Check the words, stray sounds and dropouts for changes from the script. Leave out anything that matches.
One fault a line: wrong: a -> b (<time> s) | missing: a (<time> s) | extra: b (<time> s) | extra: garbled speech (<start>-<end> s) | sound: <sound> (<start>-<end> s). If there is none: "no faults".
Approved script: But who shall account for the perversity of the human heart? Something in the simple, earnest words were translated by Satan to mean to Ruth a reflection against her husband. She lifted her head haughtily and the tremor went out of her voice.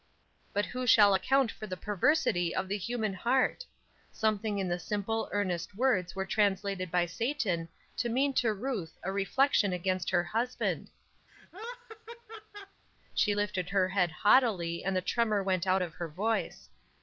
sound: laugh (11.3-12.8 s)